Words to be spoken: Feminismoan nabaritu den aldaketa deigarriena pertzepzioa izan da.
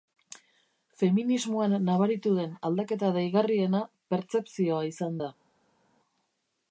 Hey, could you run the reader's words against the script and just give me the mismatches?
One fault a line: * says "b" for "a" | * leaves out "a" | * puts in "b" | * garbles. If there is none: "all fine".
all fine